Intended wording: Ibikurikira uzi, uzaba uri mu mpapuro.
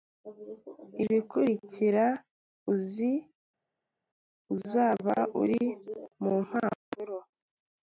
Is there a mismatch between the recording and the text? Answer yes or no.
no